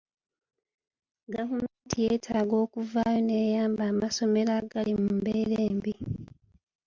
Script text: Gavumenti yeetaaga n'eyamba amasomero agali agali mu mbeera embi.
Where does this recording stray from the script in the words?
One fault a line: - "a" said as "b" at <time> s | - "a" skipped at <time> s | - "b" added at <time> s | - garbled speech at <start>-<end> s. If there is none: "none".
- "okuvaayo" added at 2.6 s
- "agali" skipped at 4.9 s